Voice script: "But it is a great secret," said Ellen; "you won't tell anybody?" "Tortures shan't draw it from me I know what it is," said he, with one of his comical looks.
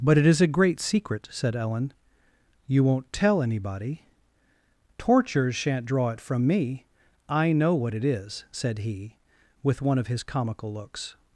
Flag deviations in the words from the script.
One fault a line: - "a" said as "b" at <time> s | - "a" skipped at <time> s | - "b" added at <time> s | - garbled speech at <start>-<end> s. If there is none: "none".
none